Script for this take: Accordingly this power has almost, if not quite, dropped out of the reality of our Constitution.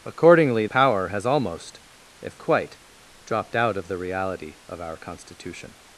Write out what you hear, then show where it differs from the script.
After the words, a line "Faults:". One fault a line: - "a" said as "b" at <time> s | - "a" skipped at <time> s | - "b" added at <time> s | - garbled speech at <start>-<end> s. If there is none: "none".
Accordingly power has almost, if quite, dropped out of the reality of our Constitution.
Faults:
- "this" skipped at 0.7 s
- "not" skipped at 2.4 s